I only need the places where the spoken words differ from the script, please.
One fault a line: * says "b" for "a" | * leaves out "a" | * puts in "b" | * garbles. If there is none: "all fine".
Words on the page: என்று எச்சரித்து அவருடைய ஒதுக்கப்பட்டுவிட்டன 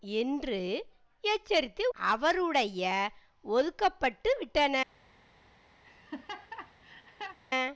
all fine